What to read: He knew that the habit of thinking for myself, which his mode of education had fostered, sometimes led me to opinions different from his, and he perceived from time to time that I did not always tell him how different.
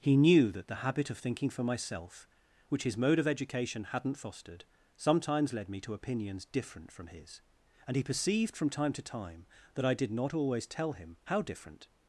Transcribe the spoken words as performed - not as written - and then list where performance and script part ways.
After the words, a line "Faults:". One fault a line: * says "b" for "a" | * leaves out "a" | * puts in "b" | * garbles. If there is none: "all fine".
He knew that the habit of thinking for myself, which his mode of education hadn't fostered, sometimes led me to opinions different from his, and he perceived from time to time that I did not always tell him how different.
Faults:
* says "hadn't" for "had"